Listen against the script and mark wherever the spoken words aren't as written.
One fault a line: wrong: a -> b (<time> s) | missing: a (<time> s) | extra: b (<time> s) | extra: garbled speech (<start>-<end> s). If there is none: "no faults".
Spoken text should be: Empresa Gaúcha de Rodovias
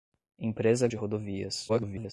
missing: Gaúcha (0.9 s)
extra: garbled speech (1.7-2.1 s)